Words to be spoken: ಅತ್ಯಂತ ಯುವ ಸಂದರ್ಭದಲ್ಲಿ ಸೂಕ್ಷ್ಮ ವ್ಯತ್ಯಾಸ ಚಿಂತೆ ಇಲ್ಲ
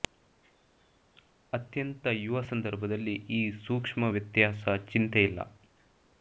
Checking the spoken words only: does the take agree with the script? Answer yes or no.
no